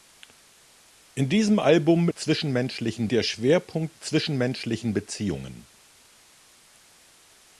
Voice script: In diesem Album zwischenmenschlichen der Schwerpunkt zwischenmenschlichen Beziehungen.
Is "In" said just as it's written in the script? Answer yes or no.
yes